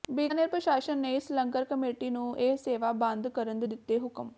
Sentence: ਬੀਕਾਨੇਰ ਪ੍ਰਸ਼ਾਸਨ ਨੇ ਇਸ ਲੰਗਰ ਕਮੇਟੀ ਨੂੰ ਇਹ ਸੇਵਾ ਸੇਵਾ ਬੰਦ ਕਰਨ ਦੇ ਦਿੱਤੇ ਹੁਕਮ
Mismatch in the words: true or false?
true